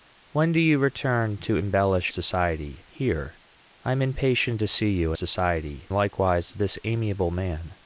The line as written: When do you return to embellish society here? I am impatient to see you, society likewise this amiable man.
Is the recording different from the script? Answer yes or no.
no